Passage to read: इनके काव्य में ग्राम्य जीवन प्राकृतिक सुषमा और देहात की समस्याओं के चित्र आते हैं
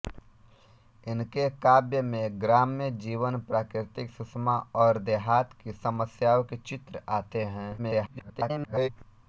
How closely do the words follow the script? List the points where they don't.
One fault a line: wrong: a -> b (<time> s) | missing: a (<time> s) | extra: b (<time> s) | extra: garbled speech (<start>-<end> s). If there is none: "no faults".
extra: garbled speech (7.8-8.9 s)